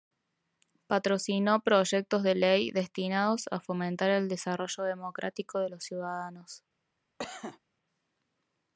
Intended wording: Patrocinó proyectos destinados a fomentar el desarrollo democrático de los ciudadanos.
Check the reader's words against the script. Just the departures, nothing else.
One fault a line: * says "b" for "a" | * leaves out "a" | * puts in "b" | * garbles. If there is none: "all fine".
* puts in "de ley"